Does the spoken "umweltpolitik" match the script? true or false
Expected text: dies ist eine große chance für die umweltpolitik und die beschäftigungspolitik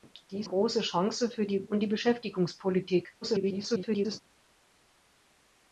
false